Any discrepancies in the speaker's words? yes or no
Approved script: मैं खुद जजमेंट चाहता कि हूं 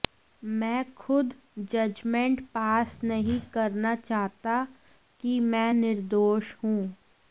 yes